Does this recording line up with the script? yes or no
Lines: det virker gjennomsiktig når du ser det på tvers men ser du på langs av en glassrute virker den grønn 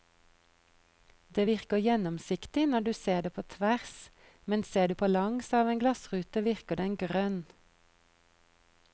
yes